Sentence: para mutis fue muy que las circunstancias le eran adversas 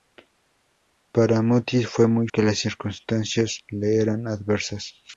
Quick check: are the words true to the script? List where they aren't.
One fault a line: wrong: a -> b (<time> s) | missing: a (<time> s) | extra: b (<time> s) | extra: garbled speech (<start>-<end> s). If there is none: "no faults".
no faults